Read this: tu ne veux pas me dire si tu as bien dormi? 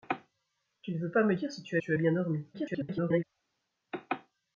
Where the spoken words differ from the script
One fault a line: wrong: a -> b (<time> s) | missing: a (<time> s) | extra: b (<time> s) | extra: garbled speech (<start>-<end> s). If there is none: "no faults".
extra: tu (1.8 s)
extra: garbled speech (2.5-3.2 s)